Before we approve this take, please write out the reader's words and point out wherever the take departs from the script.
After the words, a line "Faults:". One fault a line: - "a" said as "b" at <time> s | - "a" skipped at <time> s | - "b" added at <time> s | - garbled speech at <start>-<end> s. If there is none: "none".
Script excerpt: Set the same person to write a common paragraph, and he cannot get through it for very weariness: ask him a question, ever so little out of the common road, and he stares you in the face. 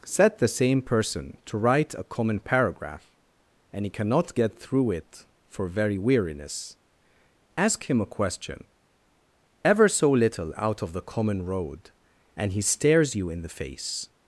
Set the same person to write a common paragraph, and he cannot get through it for very weariness: ask him a question, ever so little out of the common road, and he stares you in the face.
Faults:
none